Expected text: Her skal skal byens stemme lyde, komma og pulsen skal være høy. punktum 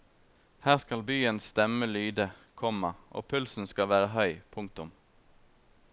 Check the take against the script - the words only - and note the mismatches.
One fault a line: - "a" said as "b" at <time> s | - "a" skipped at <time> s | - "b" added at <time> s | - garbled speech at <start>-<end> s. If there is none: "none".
- "skal" skipped at 1.0 s